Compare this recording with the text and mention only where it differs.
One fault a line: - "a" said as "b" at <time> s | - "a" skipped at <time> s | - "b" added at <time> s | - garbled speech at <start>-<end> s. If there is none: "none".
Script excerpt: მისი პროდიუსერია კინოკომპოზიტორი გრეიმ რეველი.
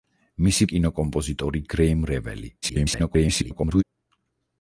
- "პროდიუსერია" skipped at 0.7 s
- garbled speech at 2.6-3.8 s